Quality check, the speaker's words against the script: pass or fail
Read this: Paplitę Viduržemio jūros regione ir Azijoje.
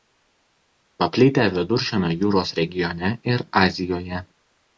pass